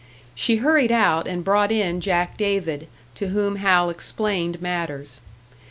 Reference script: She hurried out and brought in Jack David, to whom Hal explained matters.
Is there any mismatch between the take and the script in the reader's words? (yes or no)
no